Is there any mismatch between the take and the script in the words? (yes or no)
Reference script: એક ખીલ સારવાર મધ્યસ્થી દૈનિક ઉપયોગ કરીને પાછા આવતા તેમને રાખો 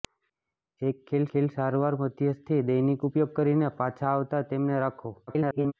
yes